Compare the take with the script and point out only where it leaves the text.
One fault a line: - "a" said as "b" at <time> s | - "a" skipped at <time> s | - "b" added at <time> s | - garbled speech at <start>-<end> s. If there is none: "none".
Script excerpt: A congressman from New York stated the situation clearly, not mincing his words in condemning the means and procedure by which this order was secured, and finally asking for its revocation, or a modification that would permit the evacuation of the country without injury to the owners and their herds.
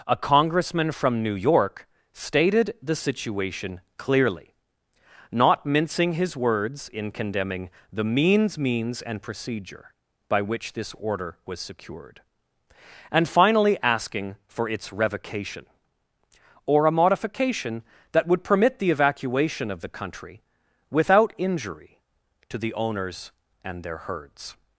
- "means" added at 8.6 s